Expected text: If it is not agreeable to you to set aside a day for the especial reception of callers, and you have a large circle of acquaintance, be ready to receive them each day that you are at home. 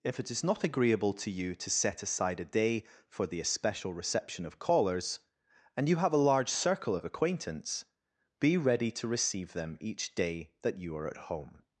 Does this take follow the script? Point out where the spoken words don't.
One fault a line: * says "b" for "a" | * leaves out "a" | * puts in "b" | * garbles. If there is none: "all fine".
all fine